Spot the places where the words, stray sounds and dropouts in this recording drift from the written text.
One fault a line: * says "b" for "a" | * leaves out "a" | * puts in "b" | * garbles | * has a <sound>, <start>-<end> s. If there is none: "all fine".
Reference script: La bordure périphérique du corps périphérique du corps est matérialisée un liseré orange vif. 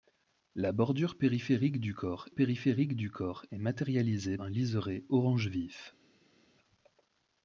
all fine